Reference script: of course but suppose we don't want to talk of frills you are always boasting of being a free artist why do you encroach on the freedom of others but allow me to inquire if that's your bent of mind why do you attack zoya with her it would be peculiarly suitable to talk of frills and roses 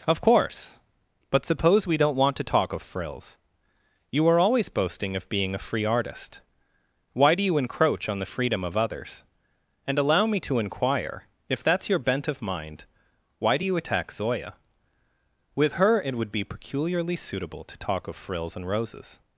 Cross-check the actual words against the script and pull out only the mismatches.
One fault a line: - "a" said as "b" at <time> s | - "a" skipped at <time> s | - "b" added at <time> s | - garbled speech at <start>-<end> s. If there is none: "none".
- "but" said as "and" at 9.8 s